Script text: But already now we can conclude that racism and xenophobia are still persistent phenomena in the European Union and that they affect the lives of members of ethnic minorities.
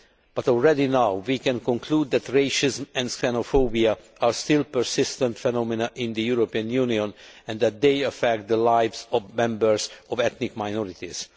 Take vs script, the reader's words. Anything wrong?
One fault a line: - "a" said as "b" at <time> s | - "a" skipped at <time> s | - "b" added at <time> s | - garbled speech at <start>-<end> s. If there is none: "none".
none